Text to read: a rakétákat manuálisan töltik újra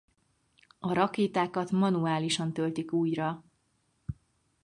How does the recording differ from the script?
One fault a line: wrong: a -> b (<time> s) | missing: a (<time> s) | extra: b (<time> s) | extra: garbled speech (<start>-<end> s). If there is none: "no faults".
no faults